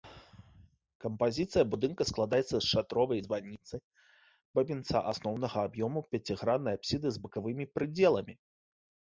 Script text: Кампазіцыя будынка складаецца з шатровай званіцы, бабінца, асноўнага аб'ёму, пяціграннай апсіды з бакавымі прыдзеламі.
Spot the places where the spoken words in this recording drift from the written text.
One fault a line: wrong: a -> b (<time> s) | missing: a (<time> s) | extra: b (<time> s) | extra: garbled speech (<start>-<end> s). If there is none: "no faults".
no faults